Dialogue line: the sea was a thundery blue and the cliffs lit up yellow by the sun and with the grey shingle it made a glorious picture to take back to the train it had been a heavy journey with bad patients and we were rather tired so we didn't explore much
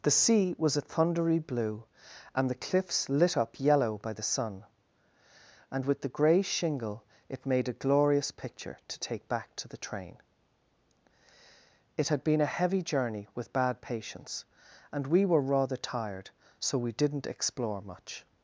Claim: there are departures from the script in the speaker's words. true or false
false